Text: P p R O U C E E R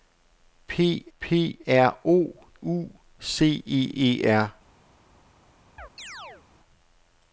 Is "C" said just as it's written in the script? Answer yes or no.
yes